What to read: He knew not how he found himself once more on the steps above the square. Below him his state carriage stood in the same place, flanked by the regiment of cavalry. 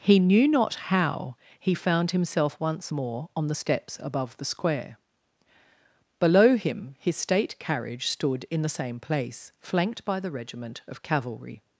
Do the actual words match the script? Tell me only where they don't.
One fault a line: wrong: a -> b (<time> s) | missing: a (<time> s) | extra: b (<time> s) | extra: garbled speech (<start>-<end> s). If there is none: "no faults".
no faults